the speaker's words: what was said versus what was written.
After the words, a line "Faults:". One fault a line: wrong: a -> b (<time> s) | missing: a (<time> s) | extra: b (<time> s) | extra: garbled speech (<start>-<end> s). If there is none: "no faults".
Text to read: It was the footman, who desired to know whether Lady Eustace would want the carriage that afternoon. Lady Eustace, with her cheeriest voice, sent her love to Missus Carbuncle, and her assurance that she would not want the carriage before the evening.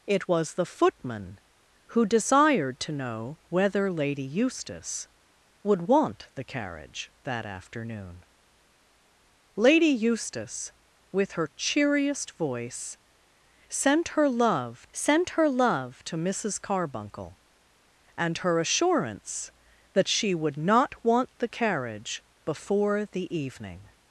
It was the footman, who desired to know whether Lady Eustace would want the carriage that afternoon. Lady Eustace, with her cheeriest voice, sent her love sent her love to Missus Carbuncle, and her assurance that she would not want the carriage before the evening.
Faults:
extra: sent her love (14.9 s)